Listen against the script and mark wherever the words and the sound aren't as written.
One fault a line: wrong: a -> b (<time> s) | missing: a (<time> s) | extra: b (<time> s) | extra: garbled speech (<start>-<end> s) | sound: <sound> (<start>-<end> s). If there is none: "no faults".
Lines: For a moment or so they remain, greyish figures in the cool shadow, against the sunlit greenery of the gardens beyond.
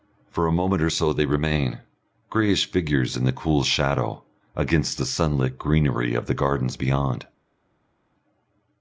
no faults